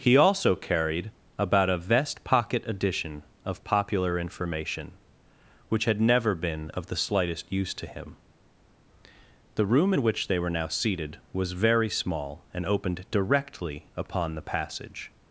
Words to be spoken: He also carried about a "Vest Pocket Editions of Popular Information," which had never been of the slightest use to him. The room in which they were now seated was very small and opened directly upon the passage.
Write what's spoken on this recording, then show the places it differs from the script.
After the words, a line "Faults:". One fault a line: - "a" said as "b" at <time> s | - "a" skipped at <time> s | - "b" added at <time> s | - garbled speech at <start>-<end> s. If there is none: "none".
He also carried about a "Vest Pocket Edition of Popular Information," which had never been of the slightest use to him. The room in which they were now seated was very small and opened directly upon the passage.
Faults:
- "Editions" said as "Edition" at 2.6 s